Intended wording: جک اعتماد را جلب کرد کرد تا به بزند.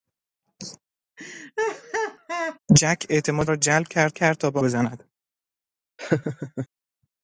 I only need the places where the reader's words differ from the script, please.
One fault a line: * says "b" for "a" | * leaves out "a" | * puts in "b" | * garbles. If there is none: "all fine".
all fine